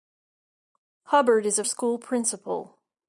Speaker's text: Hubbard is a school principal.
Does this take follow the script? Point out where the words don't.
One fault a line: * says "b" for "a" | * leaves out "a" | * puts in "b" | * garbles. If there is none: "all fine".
all fine